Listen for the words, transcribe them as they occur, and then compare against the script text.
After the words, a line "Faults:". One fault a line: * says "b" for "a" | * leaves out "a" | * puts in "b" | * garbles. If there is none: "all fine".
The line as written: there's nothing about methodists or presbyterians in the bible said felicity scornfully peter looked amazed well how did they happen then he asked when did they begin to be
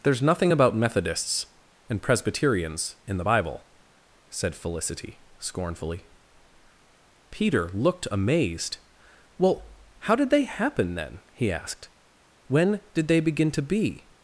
there's nothing about methodists and presbyterians in the bible said felicity scornfully peter looked amazed well how did they happen then he asked when did they begin to be
Faults:
* says "and" for "or"